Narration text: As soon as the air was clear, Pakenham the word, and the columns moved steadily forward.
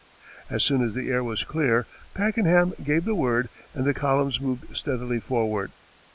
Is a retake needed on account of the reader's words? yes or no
yes